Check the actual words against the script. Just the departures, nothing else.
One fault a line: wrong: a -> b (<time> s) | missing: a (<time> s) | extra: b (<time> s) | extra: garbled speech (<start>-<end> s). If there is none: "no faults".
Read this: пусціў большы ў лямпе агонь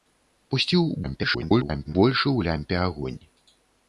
extra: garbled speech (1.0-1.9 s)